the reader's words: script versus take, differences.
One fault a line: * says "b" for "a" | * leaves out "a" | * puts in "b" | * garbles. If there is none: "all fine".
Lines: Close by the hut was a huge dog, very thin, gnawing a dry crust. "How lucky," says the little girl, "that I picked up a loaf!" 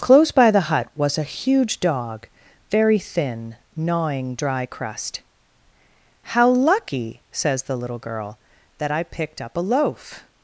* leaves out "a"